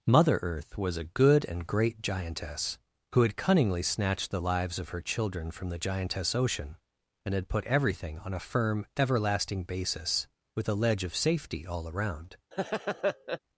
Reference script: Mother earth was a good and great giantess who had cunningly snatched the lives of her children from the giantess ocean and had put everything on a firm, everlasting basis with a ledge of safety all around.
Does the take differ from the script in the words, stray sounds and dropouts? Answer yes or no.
yes